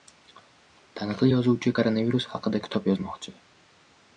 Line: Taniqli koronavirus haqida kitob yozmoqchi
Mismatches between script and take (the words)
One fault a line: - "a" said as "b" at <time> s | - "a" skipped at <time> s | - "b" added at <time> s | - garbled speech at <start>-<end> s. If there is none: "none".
- "yozuvchi" added at 1.3 s